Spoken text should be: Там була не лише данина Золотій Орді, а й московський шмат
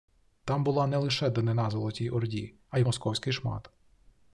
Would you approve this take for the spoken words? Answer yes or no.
yes